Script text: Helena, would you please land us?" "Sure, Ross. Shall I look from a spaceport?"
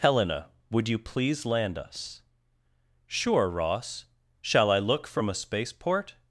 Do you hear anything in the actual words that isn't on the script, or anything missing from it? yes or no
no